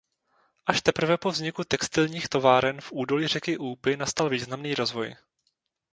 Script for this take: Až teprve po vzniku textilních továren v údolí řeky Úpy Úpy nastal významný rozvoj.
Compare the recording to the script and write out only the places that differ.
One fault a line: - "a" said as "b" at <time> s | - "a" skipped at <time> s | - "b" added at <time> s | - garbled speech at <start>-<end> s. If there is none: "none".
- "Úpy" skipped at 4.0 s